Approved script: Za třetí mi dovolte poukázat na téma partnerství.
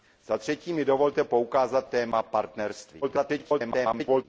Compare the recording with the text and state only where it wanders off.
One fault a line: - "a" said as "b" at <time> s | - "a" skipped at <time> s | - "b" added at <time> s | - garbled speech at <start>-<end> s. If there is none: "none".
- "na" skipped at 1.9 s
- garbled speech at 3.0-4.2 s